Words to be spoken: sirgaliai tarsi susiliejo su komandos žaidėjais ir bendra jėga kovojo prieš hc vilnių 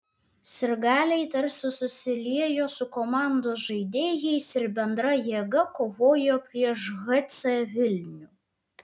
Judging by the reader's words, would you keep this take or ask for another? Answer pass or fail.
pass